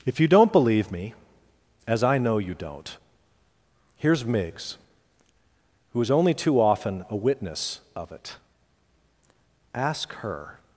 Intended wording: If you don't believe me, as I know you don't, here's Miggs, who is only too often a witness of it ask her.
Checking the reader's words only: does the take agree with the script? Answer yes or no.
yes